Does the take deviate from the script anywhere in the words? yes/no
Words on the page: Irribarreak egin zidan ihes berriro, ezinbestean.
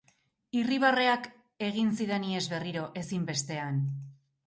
no